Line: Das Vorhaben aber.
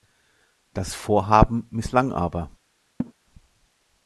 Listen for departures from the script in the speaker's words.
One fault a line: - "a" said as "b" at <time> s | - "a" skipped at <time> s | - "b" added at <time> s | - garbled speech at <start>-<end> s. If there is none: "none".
- "misslang" added at 1.7 s